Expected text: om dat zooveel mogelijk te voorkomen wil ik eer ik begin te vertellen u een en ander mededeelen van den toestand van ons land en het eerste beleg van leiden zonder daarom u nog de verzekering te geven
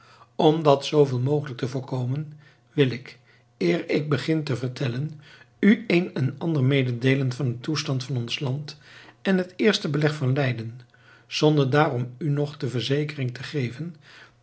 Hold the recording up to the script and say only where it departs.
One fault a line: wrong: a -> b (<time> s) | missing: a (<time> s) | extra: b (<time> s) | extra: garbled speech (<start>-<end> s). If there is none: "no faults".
no faults